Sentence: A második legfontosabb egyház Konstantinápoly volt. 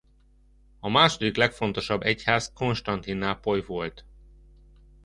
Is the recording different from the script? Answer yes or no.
no